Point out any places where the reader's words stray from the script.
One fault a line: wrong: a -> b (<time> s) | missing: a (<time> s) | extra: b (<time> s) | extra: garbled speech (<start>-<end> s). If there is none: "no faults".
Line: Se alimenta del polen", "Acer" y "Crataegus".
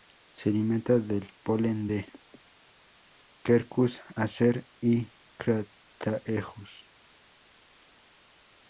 extra: de Quercus (1.8 s)